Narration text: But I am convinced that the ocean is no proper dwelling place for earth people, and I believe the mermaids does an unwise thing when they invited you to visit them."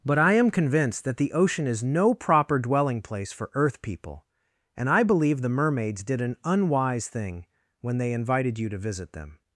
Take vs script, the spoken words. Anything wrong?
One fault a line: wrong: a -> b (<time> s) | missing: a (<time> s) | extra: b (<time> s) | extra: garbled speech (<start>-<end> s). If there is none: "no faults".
wrong: does -> did (6.0 s)